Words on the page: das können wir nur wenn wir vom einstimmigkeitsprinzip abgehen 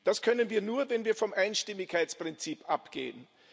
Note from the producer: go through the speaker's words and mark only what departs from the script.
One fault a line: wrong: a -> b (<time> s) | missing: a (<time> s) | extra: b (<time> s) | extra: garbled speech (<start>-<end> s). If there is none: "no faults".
no faults